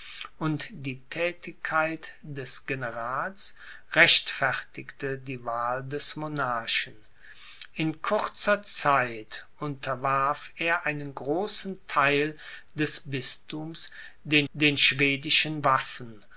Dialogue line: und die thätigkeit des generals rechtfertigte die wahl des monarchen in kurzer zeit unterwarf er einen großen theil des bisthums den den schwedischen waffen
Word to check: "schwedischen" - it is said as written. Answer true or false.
true